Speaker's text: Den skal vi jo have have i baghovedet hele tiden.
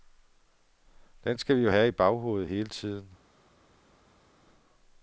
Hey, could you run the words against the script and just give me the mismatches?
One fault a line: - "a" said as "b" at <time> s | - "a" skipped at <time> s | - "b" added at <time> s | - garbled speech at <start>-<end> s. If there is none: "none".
- "have" skipped at 1.9 s